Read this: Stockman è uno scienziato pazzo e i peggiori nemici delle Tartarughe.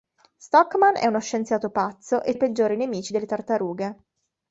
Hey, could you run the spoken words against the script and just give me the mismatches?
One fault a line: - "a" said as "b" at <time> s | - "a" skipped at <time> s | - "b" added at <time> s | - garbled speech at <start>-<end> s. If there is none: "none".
none